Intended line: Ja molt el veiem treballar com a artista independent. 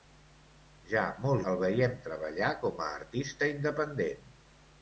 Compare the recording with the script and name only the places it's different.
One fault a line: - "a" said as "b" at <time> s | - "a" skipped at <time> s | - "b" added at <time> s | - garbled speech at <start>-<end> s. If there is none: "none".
none